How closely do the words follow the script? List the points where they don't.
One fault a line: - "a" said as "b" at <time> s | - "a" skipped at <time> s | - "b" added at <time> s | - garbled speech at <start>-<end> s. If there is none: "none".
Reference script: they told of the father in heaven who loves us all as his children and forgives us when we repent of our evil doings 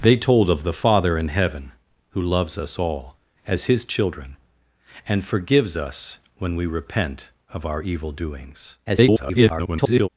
- garbled speech at 8.9-10.1 s